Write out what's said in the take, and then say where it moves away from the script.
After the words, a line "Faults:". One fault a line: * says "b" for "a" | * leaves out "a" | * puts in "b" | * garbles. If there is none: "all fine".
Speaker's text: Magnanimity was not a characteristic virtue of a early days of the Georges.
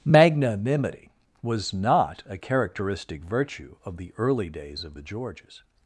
Magnanimity was not a characteristic virtue of the early days of the Georges.
Faults:
* says "the" for "a"